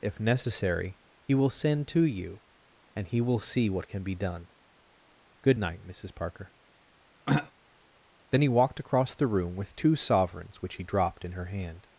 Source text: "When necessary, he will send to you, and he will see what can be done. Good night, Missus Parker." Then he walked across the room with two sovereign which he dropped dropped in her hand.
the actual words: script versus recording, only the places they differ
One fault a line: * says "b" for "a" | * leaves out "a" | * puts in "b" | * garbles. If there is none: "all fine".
* says "If" for "When"
* says "sovereigns" for "sovereign"
* leaves out "dropped"